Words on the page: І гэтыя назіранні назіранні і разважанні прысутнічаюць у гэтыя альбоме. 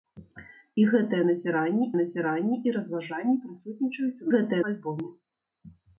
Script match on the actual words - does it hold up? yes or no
yes